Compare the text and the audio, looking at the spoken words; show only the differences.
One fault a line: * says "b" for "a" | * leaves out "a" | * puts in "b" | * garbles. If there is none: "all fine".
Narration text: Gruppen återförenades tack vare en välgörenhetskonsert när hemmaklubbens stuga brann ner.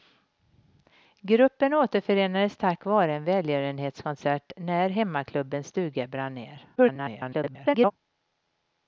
* garbles